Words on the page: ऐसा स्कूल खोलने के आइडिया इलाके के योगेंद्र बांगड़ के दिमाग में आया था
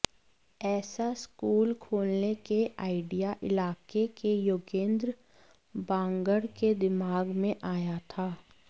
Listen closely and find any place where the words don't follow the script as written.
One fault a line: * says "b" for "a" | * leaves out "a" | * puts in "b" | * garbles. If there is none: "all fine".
all fine